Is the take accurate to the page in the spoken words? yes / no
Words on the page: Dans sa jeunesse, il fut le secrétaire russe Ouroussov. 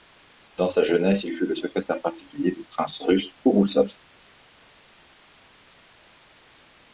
no